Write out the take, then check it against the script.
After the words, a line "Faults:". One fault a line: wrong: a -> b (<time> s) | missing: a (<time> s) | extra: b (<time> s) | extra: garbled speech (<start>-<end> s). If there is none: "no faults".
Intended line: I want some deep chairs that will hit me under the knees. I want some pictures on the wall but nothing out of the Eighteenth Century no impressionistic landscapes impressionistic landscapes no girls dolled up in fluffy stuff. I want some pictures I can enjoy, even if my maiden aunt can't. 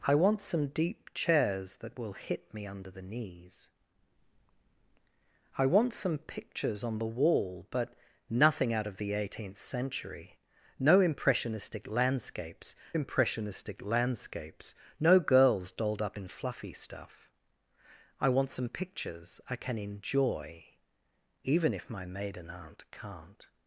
I want some deep chairs that will hit me under the knees. I want some pictures on the wall but nothing out of the Eighteenth Century no impressionistic landscapes impressionistic landscapes no girls dolled up in fluffy stuff. I want some pictures I can enjoy, even if my maiden aunt can't.
Faults:
no faults